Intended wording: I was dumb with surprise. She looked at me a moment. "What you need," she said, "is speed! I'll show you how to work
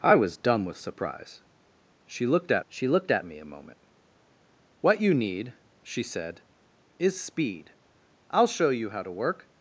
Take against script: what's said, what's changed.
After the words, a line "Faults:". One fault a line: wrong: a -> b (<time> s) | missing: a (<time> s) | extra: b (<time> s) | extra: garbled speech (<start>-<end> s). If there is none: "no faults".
I was dumb with surprise. She looked at she looked at me a moment. "What you need," she said, "is speed! I'll show you how to work
Faults:
extra: she looked at (2.7 s)